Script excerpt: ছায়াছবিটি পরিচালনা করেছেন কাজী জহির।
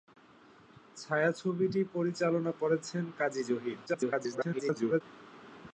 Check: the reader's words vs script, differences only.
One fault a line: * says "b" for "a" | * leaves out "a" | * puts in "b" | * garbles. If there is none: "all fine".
* garbles